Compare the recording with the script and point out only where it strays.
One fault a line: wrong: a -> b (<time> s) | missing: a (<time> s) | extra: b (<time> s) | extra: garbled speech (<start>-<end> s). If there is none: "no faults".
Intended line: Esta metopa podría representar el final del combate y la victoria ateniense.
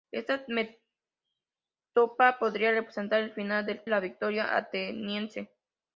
missing: combate (3.9 s)